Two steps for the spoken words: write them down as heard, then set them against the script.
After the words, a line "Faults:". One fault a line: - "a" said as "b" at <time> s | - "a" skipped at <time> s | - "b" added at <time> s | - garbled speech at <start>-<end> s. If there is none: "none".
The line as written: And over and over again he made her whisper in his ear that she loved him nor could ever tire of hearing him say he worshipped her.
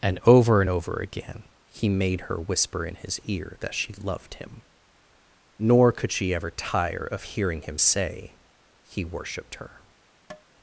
And over and over again he made her whisper in his ear that she loved him nor could she ever tire of hearing him say he worshipped her.
Faults:
- "she" added at 6.1 s